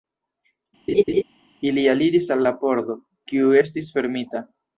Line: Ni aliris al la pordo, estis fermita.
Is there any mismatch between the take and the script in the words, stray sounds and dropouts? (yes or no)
yes